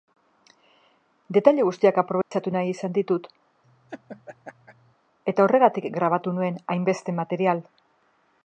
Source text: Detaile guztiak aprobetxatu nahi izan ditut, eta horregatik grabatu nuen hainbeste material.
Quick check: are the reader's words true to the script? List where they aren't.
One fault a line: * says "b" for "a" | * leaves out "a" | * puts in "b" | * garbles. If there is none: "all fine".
all fine